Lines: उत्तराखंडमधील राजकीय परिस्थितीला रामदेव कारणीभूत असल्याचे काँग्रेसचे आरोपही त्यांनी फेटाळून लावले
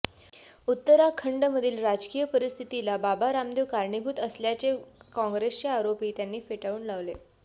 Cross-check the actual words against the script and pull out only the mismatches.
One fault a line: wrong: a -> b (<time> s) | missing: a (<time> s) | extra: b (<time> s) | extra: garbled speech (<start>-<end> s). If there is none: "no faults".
extra: बाबा (3.0 s)